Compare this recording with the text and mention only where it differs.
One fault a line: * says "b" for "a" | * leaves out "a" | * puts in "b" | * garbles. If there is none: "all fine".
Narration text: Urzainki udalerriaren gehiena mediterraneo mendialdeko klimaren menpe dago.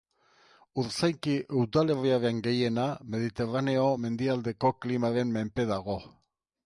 all fine